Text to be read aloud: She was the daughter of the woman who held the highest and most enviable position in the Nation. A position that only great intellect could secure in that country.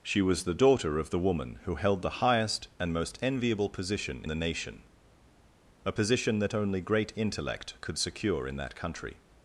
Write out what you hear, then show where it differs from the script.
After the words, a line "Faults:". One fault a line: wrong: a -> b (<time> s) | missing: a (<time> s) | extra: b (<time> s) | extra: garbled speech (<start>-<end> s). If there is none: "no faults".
She was the daughter of the woman who held the highest and most enviable position the Nation. A position that only great intellect could secure in that country.
Faults:
missing: in (4.2 s)